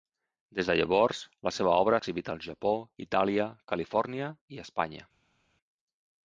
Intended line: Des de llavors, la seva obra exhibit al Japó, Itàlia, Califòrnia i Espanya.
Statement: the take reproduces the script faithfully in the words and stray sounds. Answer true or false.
true